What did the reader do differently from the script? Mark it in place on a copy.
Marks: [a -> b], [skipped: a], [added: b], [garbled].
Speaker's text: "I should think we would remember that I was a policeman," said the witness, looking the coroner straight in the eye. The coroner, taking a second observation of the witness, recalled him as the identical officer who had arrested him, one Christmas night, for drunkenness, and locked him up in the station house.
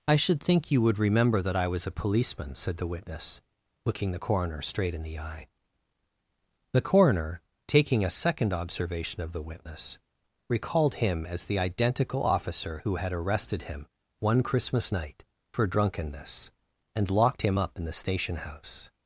"I should think [we -> you] would remember that I was a policeman," said the witness, looking the coroner straight in the eye. The coroner, taking a second observation of the witness, recalled him as the identical officer who had arrested him, one Christmas night, for drunkenness, and locked him up in the station house.